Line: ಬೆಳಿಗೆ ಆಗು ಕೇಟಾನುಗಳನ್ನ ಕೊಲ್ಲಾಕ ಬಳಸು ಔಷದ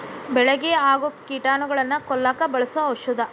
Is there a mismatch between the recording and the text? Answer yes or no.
no